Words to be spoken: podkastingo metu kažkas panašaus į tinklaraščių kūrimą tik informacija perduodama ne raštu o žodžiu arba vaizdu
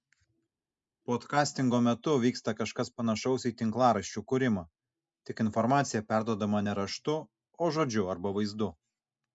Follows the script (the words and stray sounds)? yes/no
no